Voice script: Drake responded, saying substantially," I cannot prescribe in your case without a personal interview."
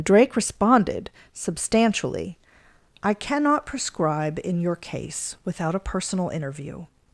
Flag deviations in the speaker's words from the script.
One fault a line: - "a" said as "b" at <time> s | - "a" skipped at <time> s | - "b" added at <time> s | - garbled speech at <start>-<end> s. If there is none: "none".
- "saying" skipped at 1.1 s